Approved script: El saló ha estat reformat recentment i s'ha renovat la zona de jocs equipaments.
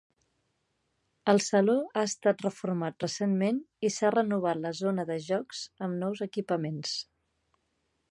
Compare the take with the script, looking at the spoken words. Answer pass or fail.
fail